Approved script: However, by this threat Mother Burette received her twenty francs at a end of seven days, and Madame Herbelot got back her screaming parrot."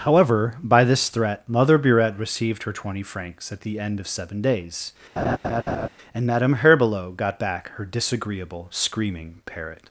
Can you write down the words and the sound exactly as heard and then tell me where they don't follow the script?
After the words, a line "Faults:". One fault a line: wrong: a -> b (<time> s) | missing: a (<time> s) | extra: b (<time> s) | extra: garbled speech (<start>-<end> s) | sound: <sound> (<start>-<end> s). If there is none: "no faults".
However, by this threat Mother Burette received her twenty francs at the end of seven days, and Madame Herbelot got back her disagreeable, screaming parrot."
Faults:
wrong: a -> the (3.6 s)
sound: laugh (5.2-5.9 s)
extra: disagreeable (7.9 s)